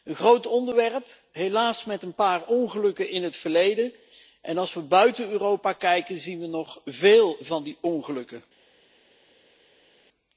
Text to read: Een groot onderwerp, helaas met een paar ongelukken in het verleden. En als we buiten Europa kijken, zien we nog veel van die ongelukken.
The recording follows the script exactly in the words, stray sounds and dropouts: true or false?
true